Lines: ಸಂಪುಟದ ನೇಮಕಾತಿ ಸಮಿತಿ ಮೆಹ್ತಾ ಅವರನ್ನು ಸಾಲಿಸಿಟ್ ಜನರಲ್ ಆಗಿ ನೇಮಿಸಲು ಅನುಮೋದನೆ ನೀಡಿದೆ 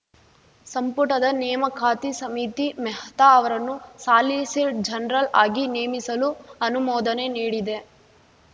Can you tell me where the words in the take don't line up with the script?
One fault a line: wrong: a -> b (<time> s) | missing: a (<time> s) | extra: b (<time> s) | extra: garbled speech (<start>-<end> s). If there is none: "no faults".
no faults